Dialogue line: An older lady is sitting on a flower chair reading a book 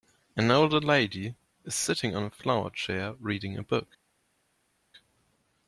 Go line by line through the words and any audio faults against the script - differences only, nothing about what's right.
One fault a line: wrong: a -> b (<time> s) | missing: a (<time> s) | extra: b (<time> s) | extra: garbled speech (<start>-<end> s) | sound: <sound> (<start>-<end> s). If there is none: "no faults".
no faults